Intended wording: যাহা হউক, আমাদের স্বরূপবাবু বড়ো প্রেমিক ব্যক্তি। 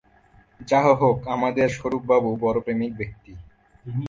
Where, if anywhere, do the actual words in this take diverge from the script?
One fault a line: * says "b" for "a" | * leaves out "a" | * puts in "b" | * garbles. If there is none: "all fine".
all fine